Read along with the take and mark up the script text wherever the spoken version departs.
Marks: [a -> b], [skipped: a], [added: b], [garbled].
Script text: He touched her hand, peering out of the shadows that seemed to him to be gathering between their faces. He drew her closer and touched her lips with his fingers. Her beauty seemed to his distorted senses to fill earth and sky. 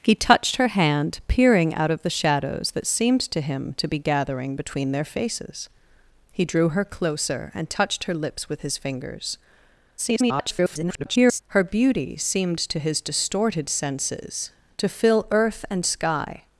He touched her hand, peering out of the shadows that seemed to him to be gathering between their faces. He drew her closer and touched her lips with his fingers. [garbled] Her beauty seemed to his distorted senses to fill earth and sky.